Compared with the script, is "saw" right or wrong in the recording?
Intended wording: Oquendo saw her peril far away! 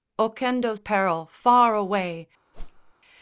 wrong